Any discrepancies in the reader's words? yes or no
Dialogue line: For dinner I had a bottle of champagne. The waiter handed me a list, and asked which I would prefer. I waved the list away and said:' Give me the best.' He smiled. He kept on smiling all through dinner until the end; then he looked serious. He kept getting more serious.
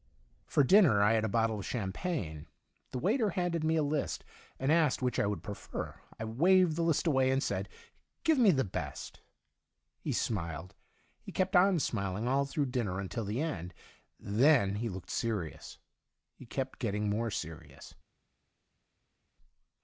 no